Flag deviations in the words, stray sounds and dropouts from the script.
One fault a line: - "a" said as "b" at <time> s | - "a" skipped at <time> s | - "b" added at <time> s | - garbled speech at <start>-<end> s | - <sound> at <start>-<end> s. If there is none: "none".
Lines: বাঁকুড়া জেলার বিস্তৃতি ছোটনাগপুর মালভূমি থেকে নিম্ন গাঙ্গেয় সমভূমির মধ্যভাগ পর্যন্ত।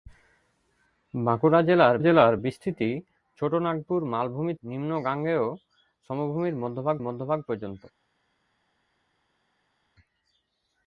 - "জেলার" added at 2.0 s
- "থেকে" skipped at 4.5 s
- "মধ্যভাগ" added at 7.0 s